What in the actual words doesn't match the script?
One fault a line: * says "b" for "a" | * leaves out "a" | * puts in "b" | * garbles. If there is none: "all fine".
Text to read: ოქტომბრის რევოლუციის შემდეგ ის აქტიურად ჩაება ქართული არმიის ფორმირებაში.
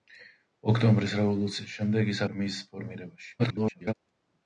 * leaves out "აქტიურად ჩაება ქართული"
* garbles